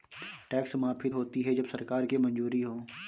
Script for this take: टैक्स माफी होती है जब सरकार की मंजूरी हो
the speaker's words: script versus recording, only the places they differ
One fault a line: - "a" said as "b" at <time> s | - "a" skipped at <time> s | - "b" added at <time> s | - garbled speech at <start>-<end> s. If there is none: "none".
none